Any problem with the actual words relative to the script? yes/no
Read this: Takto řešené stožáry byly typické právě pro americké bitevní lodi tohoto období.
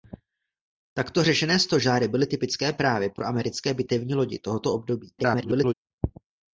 yes